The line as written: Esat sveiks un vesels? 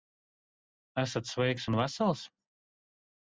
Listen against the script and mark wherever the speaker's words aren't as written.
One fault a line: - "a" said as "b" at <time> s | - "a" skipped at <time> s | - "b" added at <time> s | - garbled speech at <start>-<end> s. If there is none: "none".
none